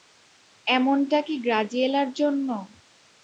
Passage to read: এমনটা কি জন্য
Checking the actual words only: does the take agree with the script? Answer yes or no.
no